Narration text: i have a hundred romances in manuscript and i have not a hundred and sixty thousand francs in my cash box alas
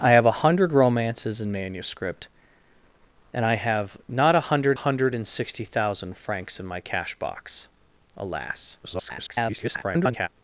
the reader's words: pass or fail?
fail